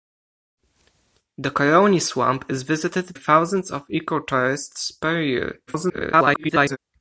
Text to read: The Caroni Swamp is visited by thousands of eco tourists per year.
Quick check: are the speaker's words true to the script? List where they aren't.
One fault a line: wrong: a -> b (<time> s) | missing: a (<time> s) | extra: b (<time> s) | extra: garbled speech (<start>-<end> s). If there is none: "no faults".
missing: by (3.1 s)
extra: garbled speech (5.7-6.8 s)